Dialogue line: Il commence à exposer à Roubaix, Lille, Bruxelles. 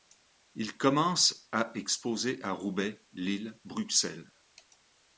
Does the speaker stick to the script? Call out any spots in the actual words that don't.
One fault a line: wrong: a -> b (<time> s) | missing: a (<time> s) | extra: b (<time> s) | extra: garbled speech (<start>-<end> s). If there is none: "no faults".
no faults